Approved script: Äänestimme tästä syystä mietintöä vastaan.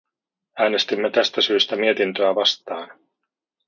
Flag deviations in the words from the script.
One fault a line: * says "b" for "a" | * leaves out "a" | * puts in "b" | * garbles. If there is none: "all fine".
all fine